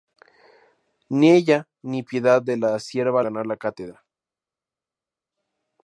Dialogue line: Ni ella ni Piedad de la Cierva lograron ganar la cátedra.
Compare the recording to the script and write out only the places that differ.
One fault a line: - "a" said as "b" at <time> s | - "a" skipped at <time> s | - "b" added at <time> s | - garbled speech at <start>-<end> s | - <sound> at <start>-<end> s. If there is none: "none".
- "lograron" skipped at 3.2 s